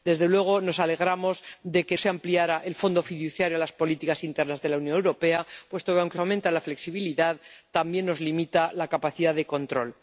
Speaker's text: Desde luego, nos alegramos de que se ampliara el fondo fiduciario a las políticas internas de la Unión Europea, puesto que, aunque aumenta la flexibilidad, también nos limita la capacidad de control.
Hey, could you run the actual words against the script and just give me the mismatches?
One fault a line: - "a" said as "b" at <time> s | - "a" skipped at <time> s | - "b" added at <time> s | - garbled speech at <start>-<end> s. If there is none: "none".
none